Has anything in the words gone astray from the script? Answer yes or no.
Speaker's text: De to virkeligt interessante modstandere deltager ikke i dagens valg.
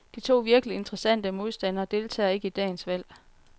no